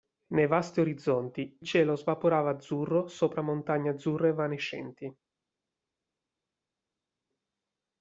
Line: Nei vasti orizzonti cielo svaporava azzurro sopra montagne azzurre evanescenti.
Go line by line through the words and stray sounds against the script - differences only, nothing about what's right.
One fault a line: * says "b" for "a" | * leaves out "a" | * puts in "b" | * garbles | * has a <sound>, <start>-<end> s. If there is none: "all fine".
all fine